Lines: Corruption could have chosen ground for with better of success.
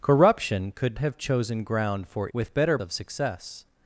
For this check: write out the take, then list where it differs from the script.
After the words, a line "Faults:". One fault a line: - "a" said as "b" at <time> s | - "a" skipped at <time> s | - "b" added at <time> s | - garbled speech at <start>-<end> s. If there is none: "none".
Corruption could have chosen ground for with better of success.
Faults:
none